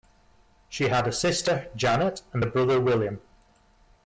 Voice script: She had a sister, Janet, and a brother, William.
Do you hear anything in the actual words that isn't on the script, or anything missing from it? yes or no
no